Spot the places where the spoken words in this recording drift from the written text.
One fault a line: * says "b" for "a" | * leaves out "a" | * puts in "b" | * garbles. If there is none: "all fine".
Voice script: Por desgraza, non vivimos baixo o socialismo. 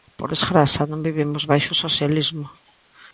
all fine